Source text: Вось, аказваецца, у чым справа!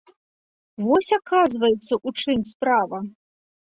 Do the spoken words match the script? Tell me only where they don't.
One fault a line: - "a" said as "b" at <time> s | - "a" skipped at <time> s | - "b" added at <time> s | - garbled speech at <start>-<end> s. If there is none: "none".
none